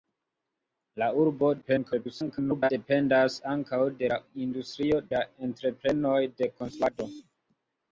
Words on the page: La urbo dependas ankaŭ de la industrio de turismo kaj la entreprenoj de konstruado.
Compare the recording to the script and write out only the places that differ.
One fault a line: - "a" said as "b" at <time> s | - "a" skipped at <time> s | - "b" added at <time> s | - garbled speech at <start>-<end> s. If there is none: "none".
- garbled speech at 1.6-2.7 s
- "de turismo kaj" skipped at 5.0 s